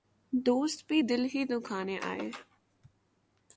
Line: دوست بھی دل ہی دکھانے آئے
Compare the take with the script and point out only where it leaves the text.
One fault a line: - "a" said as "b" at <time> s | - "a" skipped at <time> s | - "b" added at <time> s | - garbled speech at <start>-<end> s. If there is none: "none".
none